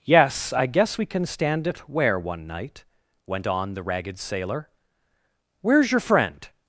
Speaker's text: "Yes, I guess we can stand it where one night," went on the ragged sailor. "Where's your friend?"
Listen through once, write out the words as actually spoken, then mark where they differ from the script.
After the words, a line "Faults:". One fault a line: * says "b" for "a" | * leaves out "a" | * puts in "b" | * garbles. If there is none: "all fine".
"Yes, I guess we can stand it where one night," went on the ragged sailor. "Where's your friend?"
Faults:
all fine